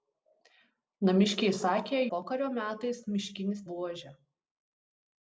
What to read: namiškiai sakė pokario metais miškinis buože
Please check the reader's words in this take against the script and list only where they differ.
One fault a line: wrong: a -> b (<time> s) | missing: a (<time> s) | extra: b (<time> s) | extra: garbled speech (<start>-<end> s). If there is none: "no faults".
no faults